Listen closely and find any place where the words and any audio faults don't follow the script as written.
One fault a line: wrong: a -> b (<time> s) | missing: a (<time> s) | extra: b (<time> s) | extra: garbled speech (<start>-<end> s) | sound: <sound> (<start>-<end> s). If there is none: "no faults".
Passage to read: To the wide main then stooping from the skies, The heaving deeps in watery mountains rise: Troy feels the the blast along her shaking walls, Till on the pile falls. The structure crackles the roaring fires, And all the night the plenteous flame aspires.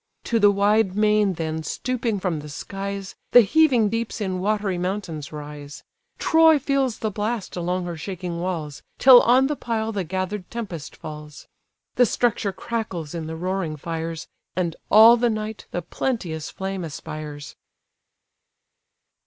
missing: the (7.1 s)
extra: the gather'd tempest (9.9 s)
extra: in (13.1 s)